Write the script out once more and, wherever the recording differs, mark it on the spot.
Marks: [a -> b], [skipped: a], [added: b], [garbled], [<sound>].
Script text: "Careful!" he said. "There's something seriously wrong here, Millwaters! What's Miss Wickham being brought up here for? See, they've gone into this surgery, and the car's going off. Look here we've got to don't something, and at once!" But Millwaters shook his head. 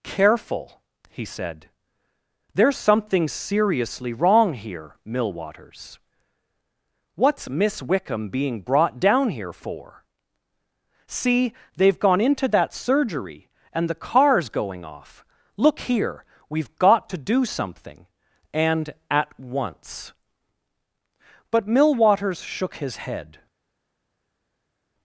"Careful!" he said. "There's something seriously wrong here, Millwaters! What's Miss Wickham being brought [up -> down] here for? See, they've gone into [this -> that] surgery, and the car's going off. Look here we've got to [don't -> do] something, and at once!" But Millwaters shook his head.